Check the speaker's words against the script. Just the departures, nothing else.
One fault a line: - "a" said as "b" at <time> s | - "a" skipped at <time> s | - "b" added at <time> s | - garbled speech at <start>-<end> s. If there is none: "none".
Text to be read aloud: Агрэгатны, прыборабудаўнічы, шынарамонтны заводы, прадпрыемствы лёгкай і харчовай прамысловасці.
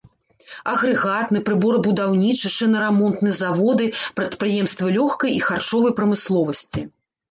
none